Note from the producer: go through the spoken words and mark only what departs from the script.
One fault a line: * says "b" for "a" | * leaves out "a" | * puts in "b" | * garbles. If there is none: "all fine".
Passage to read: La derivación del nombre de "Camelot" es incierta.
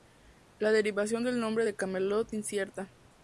* leaves out "es"